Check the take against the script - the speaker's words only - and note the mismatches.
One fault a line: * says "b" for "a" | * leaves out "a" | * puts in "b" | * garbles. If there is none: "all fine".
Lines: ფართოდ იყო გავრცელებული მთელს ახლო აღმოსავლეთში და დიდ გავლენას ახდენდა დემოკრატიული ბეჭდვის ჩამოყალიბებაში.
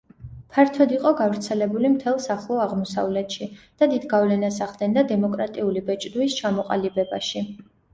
all fine